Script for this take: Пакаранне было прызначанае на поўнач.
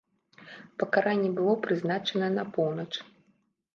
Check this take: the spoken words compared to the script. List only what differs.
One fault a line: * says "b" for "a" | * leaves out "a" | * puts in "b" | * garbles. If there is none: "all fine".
all fine